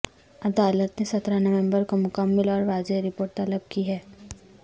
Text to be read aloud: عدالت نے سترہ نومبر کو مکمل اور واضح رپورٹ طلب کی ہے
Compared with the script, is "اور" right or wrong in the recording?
right